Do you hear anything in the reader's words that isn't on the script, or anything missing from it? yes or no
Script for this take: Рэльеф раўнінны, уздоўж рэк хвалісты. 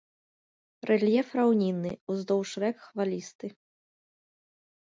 no